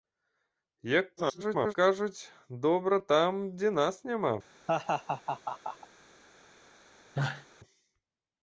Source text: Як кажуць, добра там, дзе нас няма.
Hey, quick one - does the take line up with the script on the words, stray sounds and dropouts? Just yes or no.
no